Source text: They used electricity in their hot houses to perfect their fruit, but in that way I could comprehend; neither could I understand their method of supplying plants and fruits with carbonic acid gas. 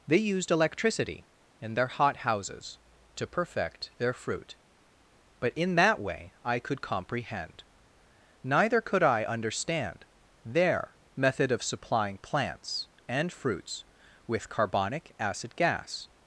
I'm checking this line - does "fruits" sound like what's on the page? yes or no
yes